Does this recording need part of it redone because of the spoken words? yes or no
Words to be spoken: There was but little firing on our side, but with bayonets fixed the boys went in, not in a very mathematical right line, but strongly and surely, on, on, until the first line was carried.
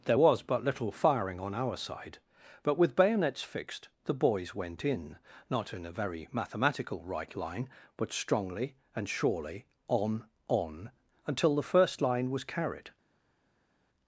no